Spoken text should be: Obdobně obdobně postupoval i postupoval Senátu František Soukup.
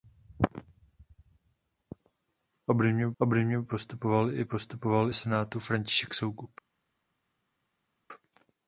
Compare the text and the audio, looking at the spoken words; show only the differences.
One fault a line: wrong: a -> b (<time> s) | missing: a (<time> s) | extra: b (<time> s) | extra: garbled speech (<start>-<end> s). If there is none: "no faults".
no faults